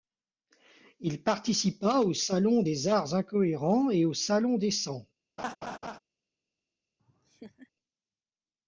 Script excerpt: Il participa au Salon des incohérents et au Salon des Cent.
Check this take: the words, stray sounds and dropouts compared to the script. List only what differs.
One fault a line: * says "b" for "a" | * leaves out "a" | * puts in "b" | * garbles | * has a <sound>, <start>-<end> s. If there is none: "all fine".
* puts in "arts"
* has a laugh, 5.4-6.0 s
* has a laugh, 7.0-7.7 s